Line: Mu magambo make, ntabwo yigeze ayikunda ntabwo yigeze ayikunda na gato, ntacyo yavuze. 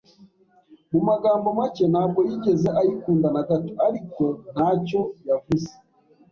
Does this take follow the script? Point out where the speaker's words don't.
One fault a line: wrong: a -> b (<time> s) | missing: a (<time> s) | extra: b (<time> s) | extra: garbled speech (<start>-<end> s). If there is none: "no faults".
missing: ntabwo yigeze ayikunda (3.3 s)
extra: ariko (3.9 s)